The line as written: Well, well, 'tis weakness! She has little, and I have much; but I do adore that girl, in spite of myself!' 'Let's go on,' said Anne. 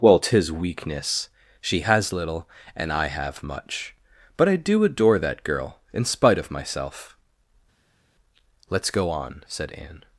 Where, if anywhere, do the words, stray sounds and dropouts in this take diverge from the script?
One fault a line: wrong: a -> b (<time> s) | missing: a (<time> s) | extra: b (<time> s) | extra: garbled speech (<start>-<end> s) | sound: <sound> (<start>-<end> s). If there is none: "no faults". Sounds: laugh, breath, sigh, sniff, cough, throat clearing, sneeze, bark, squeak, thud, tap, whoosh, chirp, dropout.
missing: well (0.2 s)